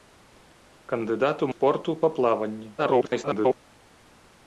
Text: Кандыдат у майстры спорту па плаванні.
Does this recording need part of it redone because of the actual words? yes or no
yes